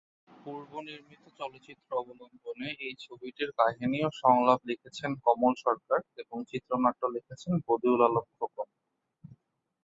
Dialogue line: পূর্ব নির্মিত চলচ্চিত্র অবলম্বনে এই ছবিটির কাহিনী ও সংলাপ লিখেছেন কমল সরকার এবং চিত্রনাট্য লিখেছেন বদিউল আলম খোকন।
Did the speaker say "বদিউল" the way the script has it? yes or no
yes